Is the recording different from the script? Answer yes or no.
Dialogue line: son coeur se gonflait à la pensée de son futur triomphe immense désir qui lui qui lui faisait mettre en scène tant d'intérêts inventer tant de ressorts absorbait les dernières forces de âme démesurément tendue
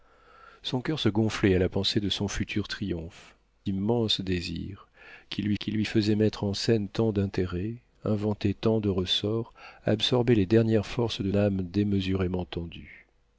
no